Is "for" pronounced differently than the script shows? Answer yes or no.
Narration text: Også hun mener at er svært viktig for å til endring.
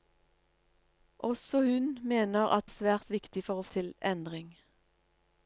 no